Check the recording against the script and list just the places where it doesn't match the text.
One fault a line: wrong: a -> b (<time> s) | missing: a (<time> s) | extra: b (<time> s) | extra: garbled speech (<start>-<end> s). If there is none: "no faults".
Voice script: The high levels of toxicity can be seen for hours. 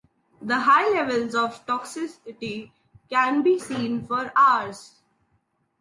no faults